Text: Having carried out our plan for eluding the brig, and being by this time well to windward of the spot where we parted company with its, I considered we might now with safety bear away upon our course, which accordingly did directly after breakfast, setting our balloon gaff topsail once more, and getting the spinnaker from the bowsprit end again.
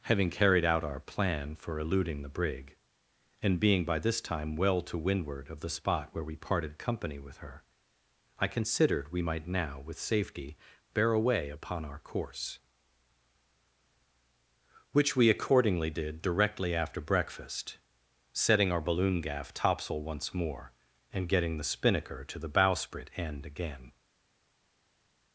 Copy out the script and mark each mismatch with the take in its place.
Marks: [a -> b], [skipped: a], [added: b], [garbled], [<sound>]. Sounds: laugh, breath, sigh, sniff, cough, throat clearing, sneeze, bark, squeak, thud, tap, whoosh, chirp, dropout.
Having carried out our plan for eluding the brig, and being by this time well to windward of the spot where we parted company with [its, -> her] I considered we might now with safety bear away upon our course, which [added: we] accordingly did directly after breakfast, setting our balloon gaff topsail once more, and getting the spinnaker [from -> to] the bowsprit end again.